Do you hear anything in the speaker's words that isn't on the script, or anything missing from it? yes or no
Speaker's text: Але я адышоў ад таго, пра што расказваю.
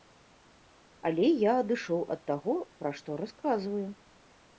no